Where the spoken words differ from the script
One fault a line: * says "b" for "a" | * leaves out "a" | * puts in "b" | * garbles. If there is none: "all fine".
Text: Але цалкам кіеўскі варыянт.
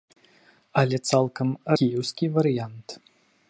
all fine